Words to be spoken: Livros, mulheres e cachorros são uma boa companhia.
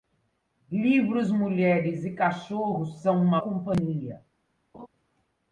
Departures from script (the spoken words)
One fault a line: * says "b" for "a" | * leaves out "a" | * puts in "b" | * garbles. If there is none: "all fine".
* leaves out "boa"